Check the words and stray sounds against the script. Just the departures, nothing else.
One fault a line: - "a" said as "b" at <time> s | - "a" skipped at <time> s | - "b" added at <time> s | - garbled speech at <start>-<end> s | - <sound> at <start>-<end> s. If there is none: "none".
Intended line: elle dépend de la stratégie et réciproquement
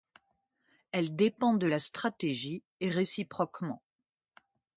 none